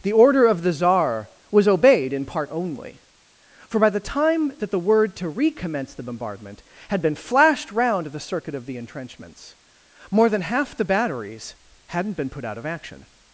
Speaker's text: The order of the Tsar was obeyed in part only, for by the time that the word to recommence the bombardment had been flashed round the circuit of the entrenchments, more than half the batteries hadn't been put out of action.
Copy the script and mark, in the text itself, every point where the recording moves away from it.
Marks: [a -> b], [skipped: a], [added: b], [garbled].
The order of the Tsar was obeyed in part only, for by the time that the word to recommence the bombardment had been flashed round the circuit of the entrenchments, more than half the batteries hadn't been put out of action.